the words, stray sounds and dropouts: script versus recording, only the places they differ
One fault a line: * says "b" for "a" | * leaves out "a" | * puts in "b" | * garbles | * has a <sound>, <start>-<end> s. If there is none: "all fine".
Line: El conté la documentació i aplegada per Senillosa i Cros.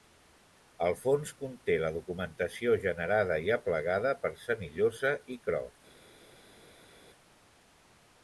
* puts in "fons"
* puts in "generada"